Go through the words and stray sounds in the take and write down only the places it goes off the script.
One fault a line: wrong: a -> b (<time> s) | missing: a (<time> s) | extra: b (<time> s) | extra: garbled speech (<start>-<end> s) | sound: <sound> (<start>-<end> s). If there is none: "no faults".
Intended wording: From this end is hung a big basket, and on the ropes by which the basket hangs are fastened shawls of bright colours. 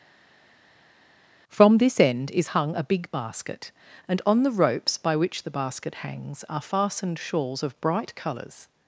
no faults